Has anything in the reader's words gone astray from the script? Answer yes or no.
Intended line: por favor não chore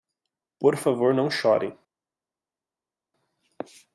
no